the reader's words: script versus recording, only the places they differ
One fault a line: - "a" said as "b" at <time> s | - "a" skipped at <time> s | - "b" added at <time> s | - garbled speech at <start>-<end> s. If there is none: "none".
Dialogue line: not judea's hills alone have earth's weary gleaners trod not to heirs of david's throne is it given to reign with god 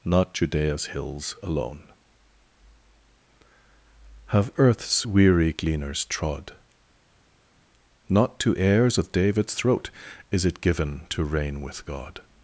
- "throne" said as "throat" at 9.5 s